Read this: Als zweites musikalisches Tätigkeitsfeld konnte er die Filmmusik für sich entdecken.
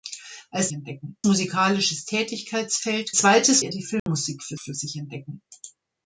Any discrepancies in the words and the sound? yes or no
yes